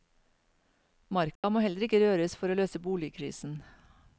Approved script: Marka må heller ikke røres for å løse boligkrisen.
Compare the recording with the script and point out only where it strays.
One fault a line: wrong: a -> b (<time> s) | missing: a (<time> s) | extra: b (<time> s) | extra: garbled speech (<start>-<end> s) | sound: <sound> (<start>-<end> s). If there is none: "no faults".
sound: dropout (1.4-1.4 s)